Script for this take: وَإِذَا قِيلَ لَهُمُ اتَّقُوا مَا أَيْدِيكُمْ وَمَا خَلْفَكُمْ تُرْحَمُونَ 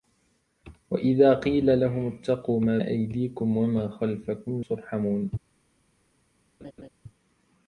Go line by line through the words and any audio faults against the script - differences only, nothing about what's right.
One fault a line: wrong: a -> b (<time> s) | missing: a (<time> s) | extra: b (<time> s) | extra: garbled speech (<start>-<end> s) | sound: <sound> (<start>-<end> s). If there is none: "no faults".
sound: laugh (6.6-6.9 s)